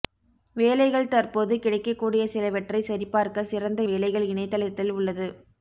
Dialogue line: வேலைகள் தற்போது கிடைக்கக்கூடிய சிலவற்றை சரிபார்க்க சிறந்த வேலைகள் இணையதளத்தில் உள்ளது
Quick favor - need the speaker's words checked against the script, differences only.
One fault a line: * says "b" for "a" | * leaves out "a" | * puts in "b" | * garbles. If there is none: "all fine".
all fine